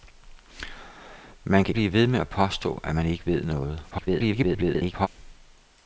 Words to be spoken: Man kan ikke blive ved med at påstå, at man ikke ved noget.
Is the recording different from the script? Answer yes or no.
yes